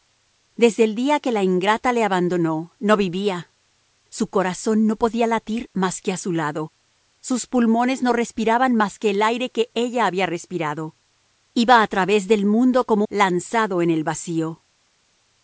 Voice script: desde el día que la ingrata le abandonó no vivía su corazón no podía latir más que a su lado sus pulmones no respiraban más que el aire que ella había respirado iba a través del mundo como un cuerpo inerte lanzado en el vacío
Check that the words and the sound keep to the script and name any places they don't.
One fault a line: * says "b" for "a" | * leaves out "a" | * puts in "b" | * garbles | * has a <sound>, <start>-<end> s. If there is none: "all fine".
* leaves out "un cuerpo inerte"